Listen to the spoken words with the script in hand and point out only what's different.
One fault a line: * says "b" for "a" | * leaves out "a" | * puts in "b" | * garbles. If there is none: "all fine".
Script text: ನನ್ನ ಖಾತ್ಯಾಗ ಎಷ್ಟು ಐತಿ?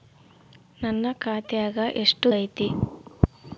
all fine